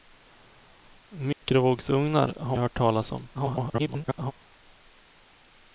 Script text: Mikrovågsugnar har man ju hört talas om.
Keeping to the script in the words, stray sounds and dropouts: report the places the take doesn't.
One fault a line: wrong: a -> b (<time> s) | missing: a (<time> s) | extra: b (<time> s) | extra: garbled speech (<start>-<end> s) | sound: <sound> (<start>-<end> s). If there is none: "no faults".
sound: dropout (1.3-1.4 s)
missing: man (2.6 s)
extra: garbled speech (3.3-4.3 s)